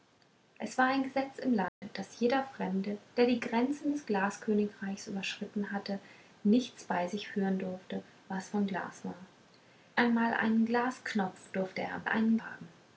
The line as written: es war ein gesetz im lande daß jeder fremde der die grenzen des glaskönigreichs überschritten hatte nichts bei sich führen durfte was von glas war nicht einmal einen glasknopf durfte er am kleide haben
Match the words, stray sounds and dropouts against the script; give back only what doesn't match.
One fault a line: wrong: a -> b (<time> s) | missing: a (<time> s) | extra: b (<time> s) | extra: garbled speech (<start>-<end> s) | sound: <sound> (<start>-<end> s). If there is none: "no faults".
sound: dropout (1.7-1.8 s)
missing: nicht (9.1 s)
wrong: kleide -> einen (12.1 s)